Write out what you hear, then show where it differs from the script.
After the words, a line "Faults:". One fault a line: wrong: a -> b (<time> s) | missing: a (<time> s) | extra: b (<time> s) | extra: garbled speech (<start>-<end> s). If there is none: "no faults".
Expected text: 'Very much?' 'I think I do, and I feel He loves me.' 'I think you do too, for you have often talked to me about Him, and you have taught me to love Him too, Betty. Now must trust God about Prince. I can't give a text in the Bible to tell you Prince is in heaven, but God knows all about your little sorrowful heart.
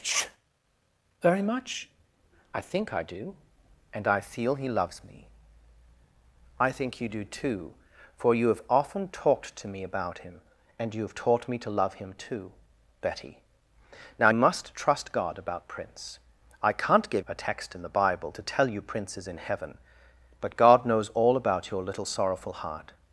'Very much?' 'I think I do, and I feel He loves me.' 'I think you do too, for you have often talked to me about Him, and you have taught me to love Him too, Betty. Now must trust God about Prince. I can't give a text in the Bible to tell you Prince is in heaven, but God knows all about your little sorrowful heart.
Faults:
no faults